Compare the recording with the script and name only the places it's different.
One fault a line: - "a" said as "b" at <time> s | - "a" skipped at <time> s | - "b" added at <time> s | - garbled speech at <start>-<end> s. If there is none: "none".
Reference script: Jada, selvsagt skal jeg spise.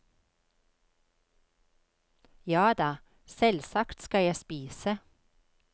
none